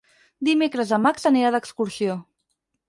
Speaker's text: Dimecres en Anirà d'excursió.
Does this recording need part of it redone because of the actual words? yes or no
yes